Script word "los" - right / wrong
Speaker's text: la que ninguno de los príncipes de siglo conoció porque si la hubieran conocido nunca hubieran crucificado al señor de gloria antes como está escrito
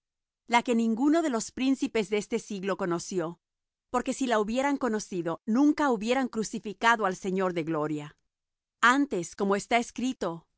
right